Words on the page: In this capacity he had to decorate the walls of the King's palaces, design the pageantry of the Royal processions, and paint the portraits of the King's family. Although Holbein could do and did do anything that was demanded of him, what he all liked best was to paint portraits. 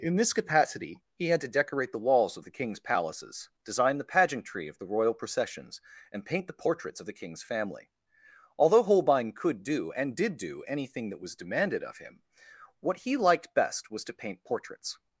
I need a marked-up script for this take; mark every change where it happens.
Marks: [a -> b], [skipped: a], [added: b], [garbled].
In this capacity he had to decorate the walls of the King's palaces, design the pageantry of the Royal processions, and paint the portraits of the King's family. Although Holbein could do and did do anything that was demanded of him, what he [skipped: all] liked best was to paint portraits.